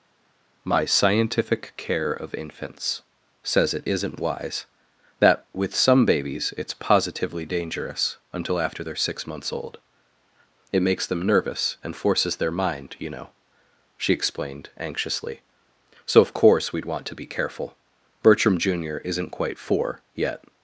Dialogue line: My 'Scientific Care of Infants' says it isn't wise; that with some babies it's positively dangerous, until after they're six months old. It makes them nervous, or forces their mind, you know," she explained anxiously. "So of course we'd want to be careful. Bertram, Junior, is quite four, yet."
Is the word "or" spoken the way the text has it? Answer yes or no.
no